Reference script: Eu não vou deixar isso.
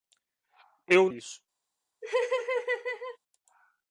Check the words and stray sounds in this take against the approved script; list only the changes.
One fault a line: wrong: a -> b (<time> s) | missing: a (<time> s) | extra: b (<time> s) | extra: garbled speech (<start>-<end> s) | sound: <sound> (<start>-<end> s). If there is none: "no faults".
missing: não vou deixar (1.1 s)
sound: laugh (2.0-3.2 s)